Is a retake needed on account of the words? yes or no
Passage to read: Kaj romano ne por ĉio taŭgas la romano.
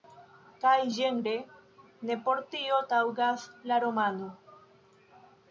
yes